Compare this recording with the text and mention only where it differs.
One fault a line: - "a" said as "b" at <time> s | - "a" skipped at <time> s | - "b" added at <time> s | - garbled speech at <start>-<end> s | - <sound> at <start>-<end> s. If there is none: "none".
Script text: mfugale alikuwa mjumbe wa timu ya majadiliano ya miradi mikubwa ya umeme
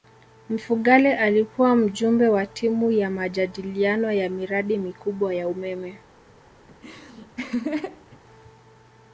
- laugh at 6.7-8.2 s